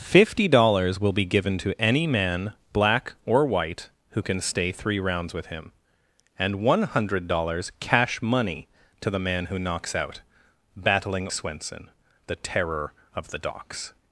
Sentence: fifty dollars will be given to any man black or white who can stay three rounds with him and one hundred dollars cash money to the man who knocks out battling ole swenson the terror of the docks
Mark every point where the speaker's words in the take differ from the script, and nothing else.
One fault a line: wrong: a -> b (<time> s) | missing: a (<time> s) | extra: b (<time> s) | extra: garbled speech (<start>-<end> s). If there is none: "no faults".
missing: ole (11.3 s)